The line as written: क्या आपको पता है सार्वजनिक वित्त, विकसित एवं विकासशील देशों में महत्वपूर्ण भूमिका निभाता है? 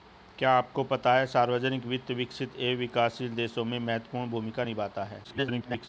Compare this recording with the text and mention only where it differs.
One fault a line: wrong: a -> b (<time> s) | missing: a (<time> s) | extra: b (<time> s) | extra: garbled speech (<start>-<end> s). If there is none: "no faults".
extra: garbled speech (5.2-5.9 s)